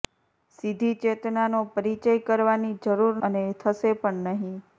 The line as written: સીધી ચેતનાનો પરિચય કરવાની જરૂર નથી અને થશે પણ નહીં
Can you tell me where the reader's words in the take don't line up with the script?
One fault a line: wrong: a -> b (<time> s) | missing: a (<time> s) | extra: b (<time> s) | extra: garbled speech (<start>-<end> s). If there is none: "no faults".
missing: નથી (3.2 s)